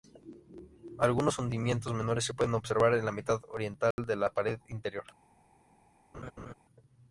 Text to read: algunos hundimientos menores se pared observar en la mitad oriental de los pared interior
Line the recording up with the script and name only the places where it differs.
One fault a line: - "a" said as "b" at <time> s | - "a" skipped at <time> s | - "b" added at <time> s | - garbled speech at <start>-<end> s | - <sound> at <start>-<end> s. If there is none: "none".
- "pared" said as "pueden" at 2.3 s
- dropout at 3.9-4.0 s
- "los" said as "la" at 4.1 s
- laugh at 6.1-6.5 s